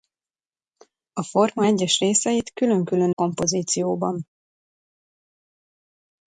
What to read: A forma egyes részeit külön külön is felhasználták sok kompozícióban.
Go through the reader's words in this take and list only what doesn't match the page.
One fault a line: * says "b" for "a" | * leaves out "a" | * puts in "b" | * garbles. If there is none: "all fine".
* leaves out "is felhasználták sok"